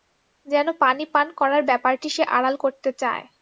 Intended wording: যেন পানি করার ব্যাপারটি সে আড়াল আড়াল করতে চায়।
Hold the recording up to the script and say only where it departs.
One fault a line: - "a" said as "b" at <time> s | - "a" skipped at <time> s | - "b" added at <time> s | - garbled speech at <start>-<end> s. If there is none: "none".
- "পান" added at 1.1 s
- "আড়াল" skipped at 2.5 s